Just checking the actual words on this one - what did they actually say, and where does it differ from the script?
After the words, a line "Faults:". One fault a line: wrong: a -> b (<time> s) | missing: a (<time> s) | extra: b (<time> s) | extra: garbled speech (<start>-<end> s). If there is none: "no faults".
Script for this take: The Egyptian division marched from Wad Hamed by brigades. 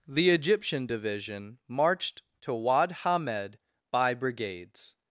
The Egyptian division marched to Wad Hamed by brigades.
Faults:
wrong: from -> to (2.4 s)